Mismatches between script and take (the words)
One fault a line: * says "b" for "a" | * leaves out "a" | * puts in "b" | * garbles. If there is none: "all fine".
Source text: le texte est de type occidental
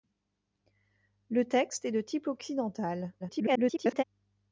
* garbles